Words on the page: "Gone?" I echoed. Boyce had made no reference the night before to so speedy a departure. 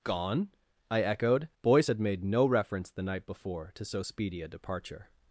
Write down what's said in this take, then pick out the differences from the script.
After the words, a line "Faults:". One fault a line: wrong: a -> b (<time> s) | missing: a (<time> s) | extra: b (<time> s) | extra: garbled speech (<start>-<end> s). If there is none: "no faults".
"Gone?" I echoed. Boyce had made no reference the night before to so speedy a departure.
Faults:
no faults